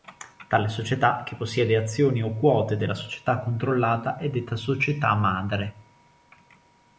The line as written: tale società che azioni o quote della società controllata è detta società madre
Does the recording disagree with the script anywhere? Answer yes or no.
yes